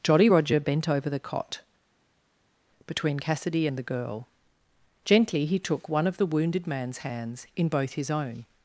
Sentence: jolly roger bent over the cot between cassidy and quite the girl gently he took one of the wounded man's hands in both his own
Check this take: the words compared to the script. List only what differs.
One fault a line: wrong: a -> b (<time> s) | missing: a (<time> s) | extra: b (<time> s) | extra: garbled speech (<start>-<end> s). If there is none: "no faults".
missing: quite (3.8 s)